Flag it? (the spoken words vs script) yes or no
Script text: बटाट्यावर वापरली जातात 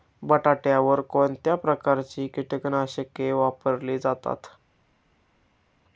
yes